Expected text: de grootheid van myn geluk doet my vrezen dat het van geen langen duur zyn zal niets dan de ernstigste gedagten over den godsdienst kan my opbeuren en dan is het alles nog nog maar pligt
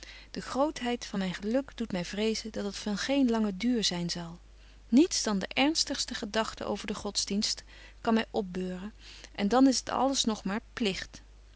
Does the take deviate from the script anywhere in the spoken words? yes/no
yes